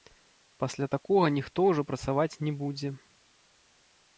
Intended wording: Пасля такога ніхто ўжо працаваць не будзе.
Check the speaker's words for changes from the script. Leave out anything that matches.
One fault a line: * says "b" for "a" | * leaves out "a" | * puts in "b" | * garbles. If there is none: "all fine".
all fine